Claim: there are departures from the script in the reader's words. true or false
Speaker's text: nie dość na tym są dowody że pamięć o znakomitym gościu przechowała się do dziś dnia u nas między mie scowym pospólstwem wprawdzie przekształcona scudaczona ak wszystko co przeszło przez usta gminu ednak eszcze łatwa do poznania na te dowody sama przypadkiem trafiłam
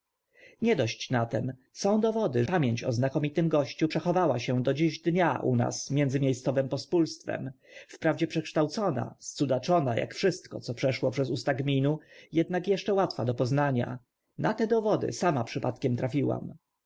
true